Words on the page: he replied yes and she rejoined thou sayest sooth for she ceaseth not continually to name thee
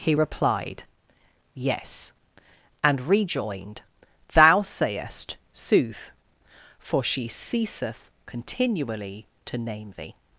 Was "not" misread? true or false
true